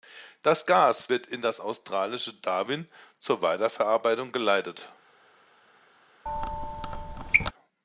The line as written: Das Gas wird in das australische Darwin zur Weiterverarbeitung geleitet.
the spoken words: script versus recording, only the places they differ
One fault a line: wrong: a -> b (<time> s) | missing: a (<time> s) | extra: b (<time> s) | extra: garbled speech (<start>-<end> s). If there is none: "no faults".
no faults